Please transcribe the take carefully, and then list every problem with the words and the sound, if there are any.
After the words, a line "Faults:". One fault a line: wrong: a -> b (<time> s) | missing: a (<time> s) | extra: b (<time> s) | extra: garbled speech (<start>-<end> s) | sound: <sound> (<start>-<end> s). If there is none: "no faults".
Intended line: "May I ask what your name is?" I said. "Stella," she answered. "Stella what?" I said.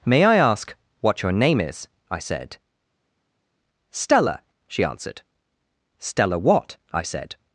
"May I ask what your name is?" I said. "Stella," she answered. "Stella what?" I said.
Faults:
no faults